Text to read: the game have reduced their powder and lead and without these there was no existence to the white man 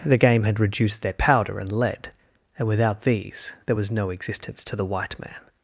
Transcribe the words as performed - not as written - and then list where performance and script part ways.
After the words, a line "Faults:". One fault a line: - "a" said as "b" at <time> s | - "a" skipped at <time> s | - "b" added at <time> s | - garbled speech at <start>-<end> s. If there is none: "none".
the game had reduced their powder and lead and without these there was no existence to the white man
Faults:
- "have" said as "had" at 0.4 s